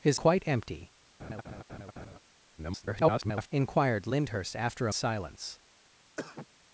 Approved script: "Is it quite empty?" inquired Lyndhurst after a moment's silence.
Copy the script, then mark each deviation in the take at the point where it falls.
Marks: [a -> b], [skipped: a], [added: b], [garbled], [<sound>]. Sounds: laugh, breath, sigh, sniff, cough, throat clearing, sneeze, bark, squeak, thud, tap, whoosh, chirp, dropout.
"Is [skipped: it] quite empty?" [laugh] [garbled] inquired Lyndhurst after a [skipped: moment's] silence. [cough]